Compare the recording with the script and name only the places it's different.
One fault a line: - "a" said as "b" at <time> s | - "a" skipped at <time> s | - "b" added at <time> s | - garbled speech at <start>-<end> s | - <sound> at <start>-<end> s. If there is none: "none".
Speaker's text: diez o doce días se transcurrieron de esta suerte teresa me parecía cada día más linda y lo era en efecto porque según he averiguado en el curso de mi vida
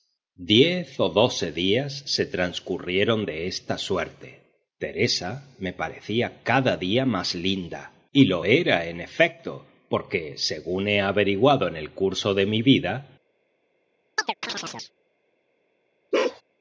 - chirp at 14.2-14.9 s
- bark at 16.1-16.4 s